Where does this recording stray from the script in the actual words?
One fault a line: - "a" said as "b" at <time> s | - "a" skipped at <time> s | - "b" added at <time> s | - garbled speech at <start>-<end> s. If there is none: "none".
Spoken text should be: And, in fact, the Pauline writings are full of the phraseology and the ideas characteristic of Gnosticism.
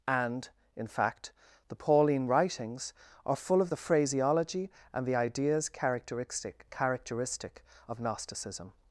- "characteristic" added at 6.7 s